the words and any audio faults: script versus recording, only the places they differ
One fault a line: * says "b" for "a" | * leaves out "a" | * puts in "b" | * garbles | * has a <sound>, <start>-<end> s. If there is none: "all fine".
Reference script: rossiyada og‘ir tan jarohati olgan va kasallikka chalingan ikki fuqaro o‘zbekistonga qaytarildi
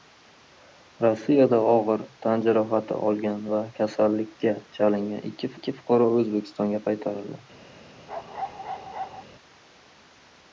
* puts in "ikki"
* has a bark, 8.1-9.2 s